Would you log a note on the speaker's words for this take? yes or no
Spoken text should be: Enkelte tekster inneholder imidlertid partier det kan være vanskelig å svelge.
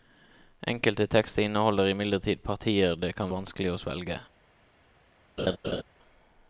yes